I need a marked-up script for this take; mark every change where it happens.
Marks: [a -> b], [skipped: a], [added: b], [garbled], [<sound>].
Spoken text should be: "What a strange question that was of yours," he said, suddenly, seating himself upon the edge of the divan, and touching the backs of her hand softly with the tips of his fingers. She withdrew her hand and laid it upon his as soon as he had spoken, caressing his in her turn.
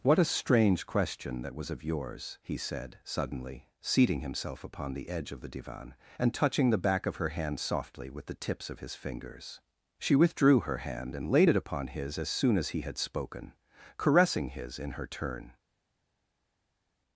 "What a strange question that was of yours," he said, suddenly, seating himself upon the edge of the divan, and touching the [backs -> back] of her hand softly with the tips of his fingers. She withdrew her hand and laid it upon his as soon as he had spoken, caressing his in her turn.